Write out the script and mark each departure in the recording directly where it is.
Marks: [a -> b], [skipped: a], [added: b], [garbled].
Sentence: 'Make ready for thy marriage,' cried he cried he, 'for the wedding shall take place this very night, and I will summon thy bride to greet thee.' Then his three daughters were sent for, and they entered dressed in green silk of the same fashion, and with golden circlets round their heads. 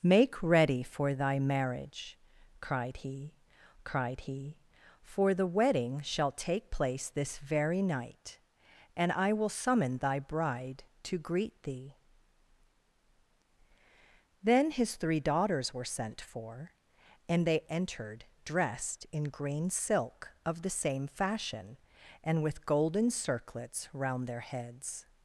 'Make ready for thy marriage,' cried he cried he, 'for the wedding shall take place this very night, and I will summon thy bride to greet thee.' Then his three daughters were sent for, and they entered dressed in green silk of the same fashion, and with golden circlets round their heads.